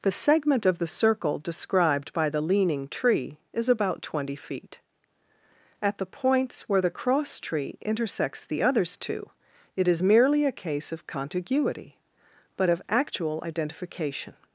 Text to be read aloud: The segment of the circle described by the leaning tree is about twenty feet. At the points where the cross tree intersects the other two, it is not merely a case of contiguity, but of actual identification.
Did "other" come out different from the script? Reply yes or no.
yes